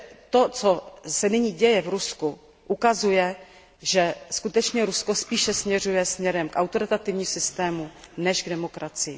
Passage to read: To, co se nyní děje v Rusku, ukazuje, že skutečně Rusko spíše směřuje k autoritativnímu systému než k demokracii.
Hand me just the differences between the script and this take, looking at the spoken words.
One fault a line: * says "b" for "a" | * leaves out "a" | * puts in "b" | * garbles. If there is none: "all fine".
all fine